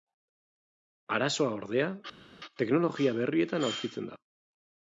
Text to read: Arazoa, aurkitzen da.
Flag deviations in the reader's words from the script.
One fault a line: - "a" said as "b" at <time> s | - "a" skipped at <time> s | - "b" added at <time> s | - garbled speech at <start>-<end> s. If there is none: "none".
- "ordea teknologia berrietan" added at 1.6 s